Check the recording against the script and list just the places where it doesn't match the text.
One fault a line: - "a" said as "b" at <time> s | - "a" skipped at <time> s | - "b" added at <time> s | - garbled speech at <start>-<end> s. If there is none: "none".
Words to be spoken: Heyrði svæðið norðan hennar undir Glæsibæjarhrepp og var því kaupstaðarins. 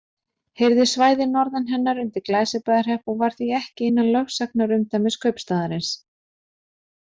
- "ekki innan lögsagnarumdæmis" added at 3.6 s